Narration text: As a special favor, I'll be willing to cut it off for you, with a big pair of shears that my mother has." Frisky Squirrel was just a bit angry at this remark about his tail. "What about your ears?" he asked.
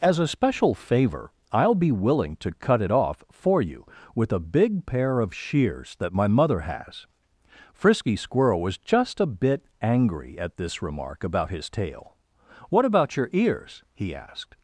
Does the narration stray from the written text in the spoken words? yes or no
no